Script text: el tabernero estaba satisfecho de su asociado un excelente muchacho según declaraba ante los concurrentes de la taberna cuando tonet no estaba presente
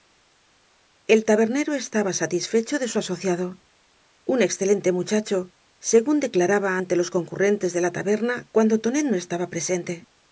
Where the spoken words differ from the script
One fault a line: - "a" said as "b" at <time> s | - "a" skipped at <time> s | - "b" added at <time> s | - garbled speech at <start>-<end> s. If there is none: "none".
none